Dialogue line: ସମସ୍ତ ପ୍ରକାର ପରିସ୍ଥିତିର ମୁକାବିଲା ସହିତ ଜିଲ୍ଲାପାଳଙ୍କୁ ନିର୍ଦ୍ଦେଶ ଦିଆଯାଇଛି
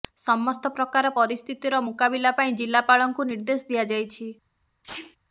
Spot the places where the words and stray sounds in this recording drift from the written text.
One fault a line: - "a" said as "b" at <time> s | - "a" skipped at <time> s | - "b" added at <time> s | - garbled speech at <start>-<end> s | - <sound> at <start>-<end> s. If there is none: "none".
- "ସହିତ" said as "ପାଇଁ" at 2.4 s
- sneeze at 4.8-5.2 s